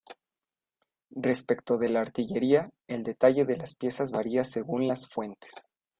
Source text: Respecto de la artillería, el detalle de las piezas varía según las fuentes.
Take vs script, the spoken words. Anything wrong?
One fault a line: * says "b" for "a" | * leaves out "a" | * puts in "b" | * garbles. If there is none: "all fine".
all fine